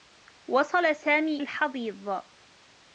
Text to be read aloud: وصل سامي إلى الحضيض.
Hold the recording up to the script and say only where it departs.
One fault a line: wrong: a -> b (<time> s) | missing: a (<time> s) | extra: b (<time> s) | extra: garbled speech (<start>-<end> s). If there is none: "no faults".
missing: إلى (1.4 s)